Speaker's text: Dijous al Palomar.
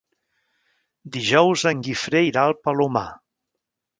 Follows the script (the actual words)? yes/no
no